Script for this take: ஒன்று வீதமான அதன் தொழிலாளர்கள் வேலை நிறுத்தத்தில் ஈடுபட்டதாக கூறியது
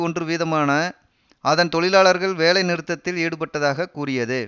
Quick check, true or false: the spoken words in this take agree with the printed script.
true